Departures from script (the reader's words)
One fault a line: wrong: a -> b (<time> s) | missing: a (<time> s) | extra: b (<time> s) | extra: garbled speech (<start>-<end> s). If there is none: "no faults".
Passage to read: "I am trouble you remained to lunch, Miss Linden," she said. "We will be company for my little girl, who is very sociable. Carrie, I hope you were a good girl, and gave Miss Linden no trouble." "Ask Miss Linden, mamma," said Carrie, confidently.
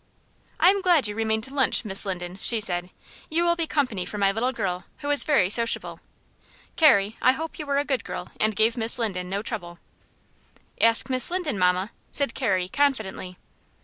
wrong: trouble -> glad (0.8 s)
wrong: We -> You (3.3 s)